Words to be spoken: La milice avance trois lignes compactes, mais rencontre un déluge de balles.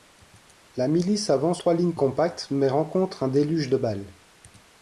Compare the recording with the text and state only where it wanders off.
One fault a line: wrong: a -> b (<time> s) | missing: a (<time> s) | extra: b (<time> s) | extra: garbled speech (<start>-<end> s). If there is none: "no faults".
no faults